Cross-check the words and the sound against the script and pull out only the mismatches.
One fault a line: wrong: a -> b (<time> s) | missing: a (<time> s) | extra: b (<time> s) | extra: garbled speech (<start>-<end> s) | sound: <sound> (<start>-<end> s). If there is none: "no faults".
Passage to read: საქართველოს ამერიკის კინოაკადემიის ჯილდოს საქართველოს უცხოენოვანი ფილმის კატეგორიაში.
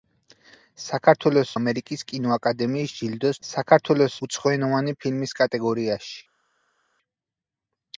no faults